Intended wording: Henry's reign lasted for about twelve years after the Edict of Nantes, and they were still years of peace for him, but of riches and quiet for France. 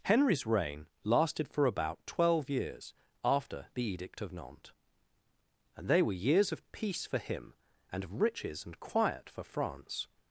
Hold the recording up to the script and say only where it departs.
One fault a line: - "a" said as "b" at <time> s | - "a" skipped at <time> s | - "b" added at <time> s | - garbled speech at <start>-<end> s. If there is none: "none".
- "still" skipped at 6.3 s
- "but" said as "and" at 7.9 s